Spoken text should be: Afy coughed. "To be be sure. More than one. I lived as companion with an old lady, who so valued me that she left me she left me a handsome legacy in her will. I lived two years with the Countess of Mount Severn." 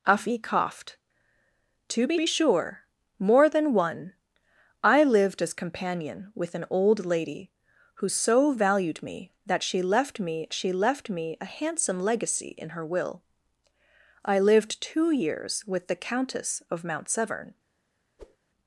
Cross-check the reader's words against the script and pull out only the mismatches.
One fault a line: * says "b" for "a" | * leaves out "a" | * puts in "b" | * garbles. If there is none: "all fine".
all fine